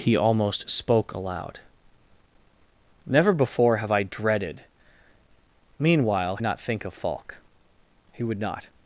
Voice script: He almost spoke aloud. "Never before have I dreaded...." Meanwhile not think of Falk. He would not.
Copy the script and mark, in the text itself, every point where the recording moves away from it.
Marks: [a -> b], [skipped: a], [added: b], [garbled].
He almost spoke aloud. "Never before have I dreaded...." Meanwhile not think of Falk. He would not.